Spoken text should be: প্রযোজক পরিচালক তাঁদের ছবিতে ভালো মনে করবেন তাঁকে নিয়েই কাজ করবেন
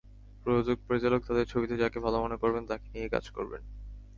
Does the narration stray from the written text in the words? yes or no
yes